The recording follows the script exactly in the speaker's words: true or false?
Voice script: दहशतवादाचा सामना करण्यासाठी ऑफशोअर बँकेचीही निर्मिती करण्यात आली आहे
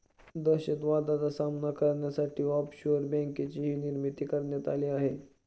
true